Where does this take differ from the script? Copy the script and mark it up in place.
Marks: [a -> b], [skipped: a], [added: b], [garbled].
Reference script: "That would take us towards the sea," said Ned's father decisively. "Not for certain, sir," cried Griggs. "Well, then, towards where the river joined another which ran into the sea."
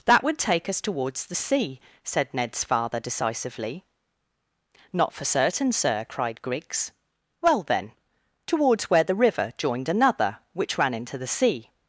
"That would take us towards the sea," said Ned's father decisively. "Not for certain, sir," cried Griggs. "Well, then, towards where the river joined another which ran into the sea."